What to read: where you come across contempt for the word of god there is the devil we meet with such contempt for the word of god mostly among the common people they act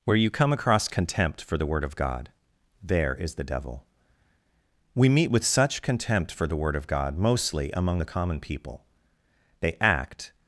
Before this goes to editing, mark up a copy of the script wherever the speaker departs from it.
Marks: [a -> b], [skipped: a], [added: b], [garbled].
where you come across contempt for the word of god there is the devil we meet with such contempt for the word of god mostly among the common people they act